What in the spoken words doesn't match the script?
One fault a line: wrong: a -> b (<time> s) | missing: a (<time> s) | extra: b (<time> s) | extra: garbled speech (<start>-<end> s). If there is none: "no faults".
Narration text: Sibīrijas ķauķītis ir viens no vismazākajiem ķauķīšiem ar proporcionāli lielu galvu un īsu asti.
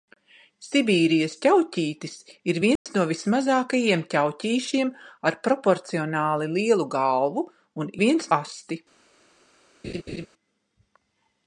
wrong: īsu -> viens (8.0 s)